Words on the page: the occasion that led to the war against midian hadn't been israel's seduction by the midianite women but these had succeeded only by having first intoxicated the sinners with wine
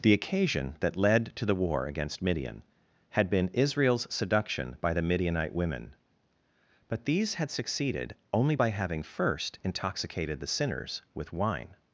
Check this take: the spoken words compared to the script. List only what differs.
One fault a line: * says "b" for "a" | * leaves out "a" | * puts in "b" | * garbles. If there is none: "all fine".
* says "had" for "hadn't"